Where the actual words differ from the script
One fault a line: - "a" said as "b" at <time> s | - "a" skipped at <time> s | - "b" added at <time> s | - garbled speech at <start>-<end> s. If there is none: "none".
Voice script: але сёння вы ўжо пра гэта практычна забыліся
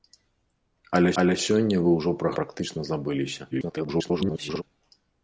- "але" added at 1.2 s
- "гэта" skipped at 2.3 s
- garbled speech at 3.5-4.6 s